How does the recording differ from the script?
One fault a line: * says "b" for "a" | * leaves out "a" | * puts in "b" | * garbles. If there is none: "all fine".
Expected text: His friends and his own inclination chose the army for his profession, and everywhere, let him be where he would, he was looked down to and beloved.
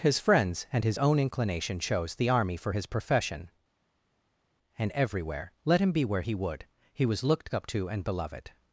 * says "up" for "down"